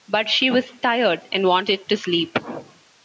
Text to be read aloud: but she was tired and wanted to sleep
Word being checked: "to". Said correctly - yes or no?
yes